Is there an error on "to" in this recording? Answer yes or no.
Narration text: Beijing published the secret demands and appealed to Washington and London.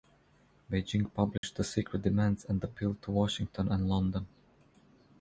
no